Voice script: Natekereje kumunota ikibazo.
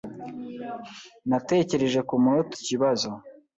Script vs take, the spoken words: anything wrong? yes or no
no